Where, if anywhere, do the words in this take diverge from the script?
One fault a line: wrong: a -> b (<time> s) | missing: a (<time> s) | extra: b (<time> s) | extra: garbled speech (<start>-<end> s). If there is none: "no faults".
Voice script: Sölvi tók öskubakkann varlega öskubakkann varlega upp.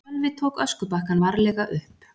missing: öskubakkann varlega (1.6 s)